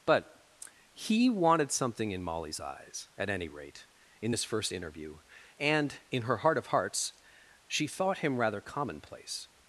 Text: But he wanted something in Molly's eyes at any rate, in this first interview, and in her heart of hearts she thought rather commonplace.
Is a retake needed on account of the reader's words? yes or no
yes